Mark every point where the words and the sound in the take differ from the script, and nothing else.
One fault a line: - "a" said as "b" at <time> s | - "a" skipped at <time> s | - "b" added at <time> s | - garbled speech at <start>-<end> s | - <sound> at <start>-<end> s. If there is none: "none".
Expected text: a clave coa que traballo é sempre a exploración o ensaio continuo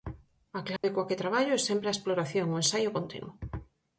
- dropout at 0.8-0.8 s